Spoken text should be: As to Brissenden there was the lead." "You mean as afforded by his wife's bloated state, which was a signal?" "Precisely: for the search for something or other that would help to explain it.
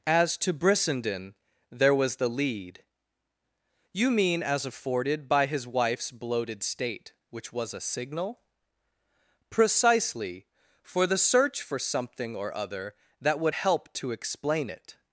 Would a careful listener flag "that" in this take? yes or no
no